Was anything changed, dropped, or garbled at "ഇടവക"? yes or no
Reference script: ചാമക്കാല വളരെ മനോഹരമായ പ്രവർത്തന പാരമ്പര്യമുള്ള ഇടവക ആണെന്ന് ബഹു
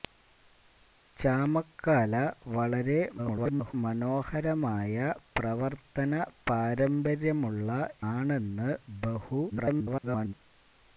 yes